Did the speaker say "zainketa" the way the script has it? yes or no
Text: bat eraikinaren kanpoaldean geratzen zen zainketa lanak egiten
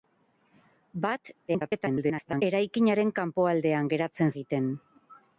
no